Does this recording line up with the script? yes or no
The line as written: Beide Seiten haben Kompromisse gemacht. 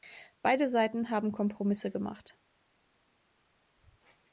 yes